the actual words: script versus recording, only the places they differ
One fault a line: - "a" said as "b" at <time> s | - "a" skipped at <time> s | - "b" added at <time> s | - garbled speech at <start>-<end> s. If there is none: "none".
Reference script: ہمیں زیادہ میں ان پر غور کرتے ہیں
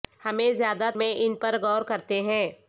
none